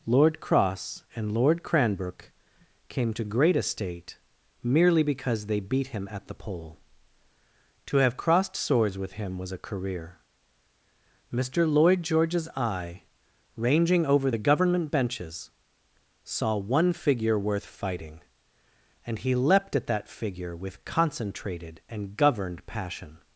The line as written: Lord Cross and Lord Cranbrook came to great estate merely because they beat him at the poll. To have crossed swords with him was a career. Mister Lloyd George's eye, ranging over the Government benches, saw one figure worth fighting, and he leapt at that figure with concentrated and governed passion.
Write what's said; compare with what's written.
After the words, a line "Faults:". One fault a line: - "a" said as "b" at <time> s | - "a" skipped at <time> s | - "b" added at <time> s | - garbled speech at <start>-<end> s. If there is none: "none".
Lord Cross and Lord Cranbrook came to great estate merely because they beat him at the poll. To have crossed swords with him was a career. Mister Lloyd George's eye, ranging over the Government benches, saw one figure worth fighting, and he leapt at that figure with concentrated and governed passion.
Faults:
none